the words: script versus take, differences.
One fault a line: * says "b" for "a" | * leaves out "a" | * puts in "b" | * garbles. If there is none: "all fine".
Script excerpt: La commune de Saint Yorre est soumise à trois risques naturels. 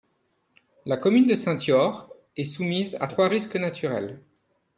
all fine